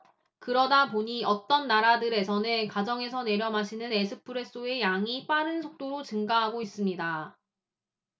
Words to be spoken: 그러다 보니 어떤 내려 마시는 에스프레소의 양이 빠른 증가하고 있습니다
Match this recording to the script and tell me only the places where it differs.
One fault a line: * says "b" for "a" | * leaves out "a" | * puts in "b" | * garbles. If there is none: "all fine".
* puts in "나라들에서는 가정에서"
* puts in "속도로"